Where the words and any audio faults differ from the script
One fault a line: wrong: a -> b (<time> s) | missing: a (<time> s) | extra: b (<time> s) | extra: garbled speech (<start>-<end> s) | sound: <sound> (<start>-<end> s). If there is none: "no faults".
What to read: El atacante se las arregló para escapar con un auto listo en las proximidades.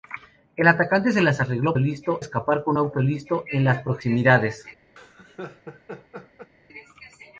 wrong: para -> listo (1.8 s)
missing: un (2.8 s)
sound: laugh (5.0-6.5 s)